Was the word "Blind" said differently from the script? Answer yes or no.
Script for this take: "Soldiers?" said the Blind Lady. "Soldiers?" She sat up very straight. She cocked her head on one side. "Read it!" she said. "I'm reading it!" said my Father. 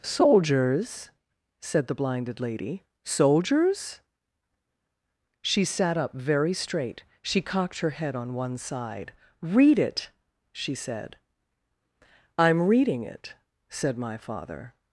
yes